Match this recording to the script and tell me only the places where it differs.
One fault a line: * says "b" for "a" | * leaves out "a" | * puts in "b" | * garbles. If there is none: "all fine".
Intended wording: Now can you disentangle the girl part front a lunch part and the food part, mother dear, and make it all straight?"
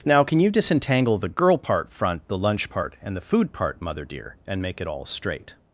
* says "the" for "a"